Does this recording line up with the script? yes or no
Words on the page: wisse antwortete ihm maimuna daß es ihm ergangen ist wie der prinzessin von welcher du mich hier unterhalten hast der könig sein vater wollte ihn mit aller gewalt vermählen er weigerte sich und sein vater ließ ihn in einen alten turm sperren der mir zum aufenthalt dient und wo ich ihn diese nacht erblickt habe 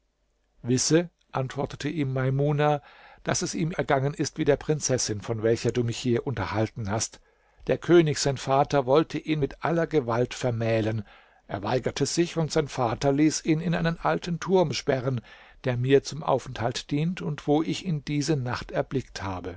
yes